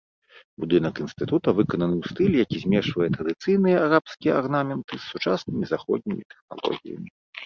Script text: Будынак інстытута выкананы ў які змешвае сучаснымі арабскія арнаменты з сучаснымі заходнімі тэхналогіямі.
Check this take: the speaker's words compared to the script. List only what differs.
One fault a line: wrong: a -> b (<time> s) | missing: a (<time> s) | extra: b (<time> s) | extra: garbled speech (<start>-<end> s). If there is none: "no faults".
extra: стылі (2.1 s)
wrong: сучаснымі -> традыцыйныя (3.2 s)